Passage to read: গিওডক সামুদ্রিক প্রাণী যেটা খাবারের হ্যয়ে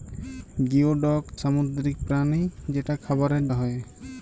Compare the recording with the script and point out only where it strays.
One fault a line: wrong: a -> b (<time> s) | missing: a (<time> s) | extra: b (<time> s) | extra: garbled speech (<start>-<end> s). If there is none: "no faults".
no faults